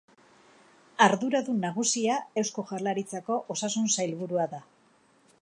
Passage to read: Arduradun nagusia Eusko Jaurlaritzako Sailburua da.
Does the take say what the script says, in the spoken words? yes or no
no